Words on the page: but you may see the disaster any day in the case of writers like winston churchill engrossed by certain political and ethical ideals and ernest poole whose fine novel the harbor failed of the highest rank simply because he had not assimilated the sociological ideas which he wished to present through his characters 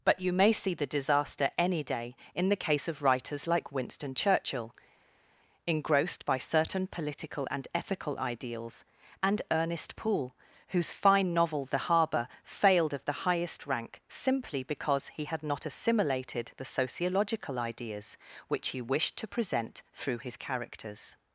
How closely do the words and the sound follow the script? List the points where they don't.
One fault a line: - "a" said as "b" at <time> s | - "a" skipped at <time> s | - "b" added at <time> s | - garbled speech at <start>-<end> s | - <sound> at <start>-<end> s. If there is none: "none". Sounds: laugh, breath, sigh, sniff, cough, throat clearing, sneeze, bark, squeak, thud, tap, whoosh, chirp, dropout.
none